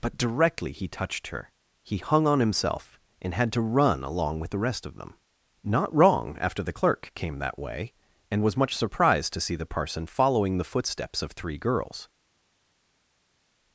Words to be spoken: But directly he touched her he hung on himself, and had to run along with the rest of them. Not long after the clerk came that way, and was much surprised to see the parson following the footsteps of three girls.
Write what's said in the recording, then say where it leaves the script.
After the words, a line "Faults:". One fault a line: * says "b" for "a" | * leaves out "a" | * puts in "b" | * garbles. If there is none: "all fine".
But directly he touched her he hung on himself, and had to run along with the rest of them. Not wrong after the clerk came that way, and was much surprised to see the parson following the footsteps of three girls.
Faults:
* says "wrong" for "long"